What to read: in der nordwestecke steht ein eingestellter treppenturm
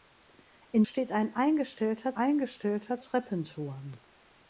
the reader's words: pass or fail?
fail